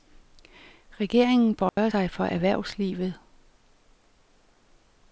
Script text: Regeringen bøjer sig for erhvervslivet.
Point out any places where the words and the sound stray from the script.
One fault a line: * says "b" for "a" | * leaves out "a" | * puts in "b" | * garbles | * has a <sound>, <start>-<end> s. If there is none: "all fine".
* has a dropout, 1.7-1.8 s